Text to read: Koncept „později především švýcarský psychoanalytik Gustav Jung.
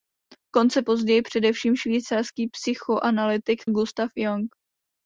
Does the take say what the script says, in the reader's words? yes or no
yes